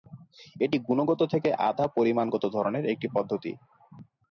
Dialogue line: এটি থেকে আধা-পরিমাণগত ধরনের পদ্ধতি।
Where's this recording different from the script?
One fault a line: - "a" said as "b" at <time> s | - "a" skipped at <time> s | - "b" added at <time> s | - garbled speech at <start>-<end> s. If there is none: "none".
- "গুণগত" added at 0.9 s
- "একটি" added at 2.9 s